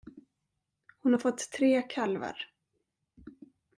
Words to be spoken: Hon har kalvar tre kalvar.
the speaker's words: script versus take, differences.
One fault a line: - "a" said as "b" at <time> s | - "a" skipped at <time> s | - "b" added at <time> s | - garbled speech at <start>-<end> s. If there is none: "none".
- "kalvar" said as "fått" at 1.2 s